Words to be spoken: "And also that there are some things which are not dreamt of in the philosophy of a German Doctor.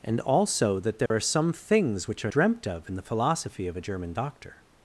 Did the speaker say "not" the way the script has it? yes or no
no